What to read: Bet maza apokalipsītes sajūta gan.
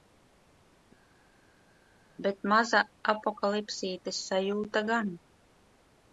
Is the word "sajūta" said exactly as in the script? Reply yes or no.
yes